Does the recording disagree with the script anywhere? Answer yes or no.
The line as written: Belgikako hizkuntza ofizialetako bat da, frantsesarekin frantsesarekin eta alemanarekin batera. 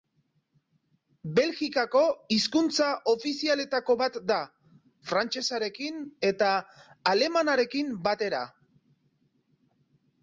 yes